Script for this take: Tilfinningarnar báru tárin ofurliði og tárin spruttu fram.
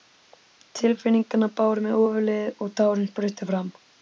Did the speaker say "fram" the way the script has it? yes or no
yes